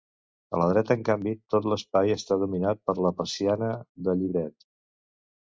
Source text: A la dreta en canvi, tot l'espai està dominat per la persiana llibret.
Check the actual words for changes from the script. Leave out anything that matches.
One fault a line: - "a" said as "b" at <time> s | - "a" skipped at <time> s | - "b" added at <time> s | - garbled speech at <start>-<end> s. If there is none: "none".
- "de" added at 4.1 s